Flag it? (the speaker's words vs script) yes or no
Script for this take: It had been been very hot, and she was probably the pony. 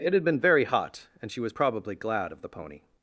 yes